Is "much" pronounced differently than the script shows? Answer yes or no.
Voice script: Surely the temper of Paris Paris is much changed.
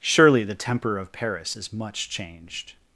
no